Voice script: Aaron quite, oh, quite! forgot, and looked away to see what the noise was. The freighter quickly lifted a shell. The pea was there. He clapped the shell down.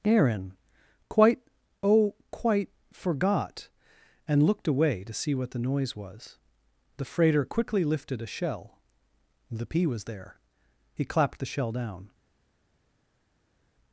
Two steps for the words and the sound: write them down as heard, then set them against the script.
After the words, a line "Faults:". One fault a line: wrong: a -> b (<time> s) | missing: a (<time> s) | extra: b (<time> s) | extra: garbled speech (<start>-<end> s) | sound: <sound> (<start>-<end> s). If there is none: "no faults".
Aaron quite, oh, quite! forgot, and looked away to see what the noise was. The freighter quickly lifted a shell. The pea was there. He clapped the shell down.
Faults:
no faults